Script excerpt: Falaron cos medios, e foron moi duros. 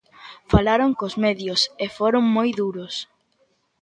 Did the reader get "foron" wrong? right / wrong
right